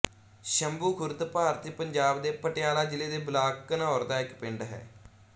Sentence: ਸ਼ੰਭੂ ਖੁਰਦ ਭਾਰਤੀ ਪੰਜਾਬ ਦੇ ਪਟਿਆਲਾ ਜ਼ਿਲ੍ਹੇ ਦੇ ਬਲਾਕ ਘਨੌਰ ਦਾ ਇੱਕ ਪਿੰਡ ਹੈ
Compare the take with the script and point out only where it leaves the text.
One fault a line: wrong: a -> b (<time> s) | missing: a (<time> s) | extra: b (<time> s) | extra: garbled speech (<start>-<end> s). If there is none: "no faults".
no faults